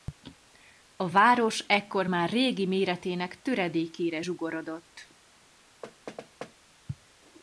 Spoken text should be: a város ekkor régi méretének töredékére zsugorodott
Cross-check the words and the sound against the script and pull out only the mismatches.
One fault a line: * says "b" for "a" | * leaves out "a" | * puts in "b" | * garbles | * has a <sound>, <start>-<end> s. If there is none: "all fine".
* puts in "már"
* has a thud, 5.8-6.5 s